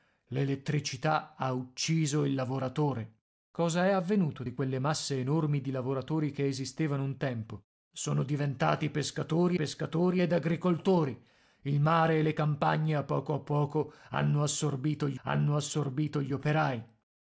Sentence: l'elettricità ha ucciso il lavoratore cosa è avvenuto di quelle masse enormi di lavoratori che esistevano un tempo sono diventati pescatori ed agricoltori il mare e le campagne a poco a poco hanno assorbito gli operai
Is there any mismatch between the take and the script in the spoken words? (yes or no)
yes